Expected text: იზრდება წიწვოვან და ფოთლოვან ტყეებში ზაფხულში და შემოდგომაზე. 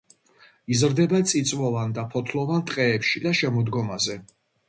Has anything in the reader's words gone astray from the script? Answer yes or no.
yes